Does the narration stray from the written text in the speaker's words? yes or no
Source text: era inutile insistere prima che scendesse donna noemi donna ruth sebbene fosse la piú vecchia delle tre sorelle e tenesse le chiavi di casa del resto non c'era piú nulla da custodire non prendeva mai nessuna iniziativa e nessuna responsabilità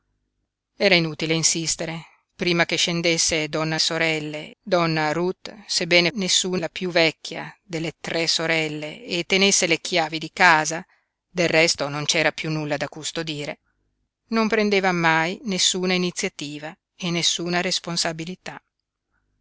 yes